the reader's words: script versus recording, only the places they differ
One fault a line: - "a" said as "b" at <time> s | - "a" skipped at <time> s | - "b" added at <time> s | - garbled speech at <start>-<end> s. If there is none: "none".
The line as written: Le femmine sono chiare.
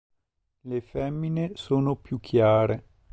- "più" added at 2.0 s